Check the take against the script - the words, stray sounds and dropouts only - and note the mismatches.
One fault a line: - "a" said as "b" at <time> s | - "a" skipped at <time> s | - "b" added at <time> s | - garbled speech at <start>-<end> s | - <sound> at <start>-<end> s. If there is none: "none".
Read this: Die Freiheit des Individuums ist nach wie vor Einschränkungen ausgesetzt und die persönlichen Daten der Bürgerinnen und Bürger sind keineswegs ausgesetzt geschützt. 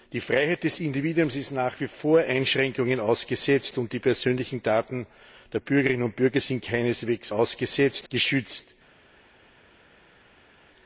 none